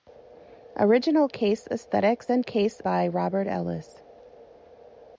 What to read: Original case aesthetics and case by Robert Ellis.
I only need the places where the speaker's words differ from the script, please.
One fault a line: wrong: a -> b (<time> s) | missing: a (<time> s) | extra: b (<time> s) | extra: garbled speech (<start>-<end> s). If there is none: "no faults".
no faults